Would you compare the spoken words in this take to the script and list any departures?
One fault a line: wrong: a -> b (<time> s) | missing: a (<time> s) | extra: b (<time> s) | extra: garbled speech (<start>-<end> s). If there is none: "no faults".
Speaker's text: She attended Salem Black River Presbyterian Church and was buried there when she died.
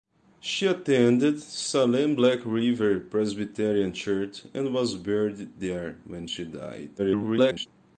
extra: garbled speech (7.0-7.7 s)